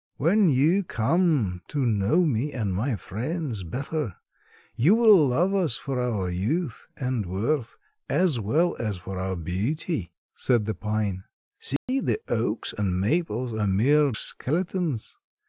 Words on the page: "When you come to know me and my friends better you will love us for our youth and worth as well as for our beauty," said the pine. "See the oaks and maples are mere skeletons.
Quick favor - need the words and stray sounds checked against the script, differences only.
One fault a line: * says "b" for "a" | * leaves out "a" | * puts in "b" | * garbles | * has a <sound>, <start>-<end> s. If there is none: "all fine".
* has a dropout, 11.8-11.9 s